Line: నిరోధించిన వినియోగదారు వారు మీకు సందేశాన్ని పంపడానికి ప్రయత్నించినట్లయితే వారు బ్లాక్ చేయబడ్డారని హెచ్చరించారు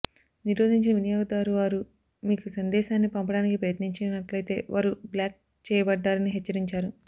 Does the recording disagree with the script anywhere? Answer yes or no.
no